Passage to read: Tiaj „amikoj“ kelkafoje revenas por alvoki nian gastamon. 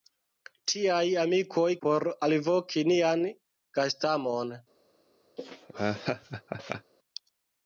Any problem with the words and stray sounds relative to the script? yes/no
yes